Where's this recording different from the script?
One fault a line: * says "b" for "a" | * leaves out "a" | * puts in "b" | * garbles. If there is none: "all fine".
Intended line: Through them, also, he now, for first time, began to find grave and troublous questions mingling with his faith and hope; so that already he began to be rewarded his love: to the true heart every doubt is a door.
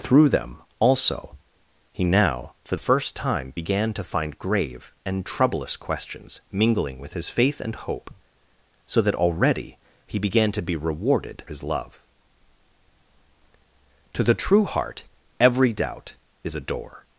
all fine